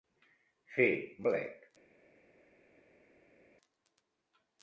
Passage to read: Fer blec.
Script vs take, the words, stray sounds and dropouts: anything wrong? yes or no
no